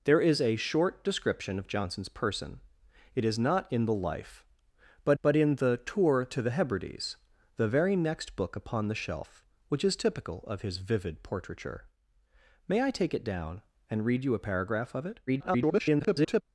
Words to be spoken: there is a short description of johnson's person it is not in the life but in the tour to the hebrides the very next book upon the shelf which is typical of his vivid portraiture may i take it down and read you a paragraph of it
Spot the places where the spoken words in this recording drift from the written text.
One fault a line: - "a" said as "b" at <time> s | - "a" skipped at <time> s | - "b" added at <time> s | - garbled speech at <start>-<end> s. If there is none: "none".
- "but" added at 5.2 s
- garbled speech at 15.3-16.4 s